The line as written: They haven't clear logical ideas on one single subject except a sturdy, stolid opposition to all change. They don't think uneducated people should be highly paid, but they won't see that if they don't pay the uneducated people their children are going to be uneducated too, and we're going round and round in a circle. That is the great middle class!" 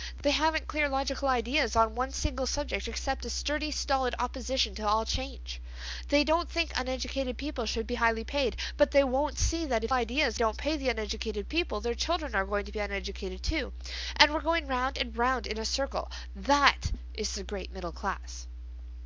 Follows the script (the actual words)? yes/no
no